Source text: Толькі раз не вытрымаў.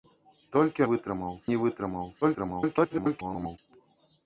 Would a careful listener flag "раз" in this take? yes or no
yes